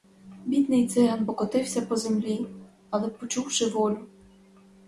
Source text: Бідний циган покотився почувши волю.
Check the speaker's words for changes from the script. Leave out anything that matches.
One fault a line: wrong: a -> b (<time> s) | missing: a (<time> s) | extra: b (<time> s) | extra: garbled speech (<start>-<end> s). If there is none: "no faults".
extra: по землі але (1.8 s)